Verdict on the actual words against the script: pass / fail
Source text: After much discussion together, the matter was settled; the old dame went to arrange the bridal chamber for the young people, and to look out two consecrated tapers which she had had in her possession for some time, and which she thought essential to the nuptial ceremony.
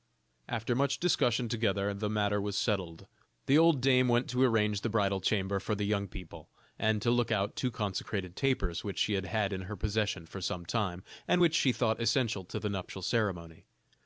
pass